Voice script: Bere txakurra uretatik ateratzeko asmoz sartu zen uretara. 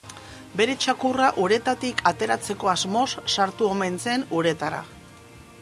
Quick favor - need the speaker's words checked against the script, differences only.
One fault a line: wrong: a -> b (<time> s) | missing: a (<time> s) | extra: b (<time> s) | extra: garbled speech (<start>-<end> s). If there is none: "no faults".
extra: omen (3.7 s)